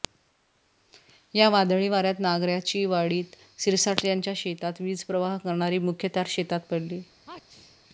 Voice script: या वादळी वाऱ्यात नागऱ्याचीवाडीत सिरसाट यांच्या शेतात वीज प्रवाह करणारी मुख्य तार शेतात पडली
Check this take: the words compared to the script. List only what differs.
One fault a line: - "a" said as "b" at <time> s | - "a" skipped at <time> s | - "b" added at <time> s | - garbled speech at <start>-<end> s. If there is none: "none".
none